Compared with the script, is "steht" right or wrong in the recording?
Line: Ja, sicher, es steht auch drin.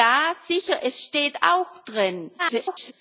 right